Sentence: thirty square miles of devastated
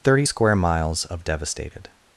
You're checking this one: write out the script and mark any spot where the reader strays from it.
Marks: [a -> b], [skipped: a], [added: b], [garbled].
thirty square miles of devastated